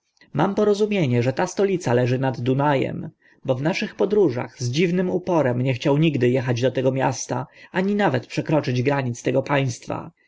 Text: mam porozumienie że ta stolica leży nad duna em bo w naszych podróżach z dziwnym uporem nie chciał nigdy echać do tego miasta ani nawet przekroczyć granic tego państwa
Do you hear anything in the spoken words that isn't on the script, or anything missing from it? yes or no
no